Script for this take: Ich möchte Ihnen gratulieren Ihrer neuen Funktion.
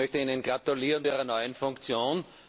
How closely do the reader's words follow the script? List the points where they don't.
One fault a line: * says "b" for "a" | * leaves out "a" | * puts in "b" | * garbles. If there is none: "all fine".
all fine